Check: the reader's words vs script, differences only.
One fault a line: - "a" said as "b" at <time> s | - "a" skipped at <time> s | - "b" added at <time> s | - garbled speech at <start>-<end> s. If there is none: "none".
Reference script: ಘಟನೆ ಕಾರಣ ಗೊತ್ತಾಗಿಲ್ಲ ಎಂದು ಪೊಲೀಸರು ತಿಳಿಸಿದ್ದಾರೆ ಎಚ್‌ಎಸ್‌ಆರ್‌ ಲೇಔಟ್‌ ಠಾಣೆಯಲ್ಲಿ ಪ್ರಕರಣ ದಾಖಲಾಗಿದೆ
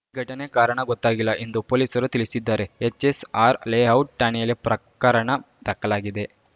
none